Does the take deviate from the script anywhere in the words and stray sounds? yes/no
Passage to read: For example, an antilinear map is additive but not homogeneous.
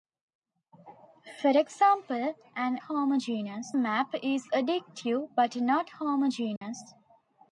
yes